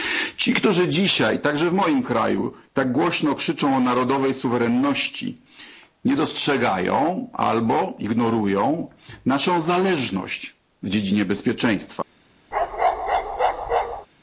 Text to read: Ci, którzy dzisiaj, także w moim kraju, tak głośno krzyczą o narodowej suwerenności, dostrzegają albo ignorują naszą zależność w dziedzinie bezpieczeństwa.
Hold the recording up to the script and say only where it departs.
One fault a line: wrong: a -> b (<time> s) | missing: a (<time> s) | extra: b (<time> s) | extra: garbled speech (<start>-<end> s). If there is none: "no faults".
extra: nie (6.0 s)